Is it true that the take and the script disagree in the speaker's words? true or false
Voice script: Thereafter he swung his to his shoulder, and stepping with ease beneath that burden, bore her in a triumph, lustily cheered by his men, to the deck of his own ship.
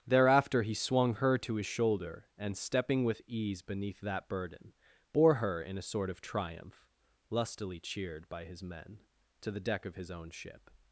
true